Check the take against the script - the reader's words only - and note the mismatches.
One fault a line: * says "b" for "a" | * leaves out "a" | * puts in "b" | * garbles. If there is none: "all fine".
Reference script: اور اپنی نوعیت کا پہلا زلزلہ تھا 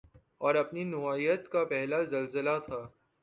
all fine